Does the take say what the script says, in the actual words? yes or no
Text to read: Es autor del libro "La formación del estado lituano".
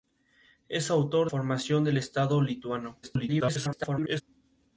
no